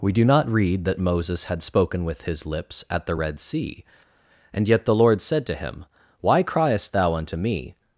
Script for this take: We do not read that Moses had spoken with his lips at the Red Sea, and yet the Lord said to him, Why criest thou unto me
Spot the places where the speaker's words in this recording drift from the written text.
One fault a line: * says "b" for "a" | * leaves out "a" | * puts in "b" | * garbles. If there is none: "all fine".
all fine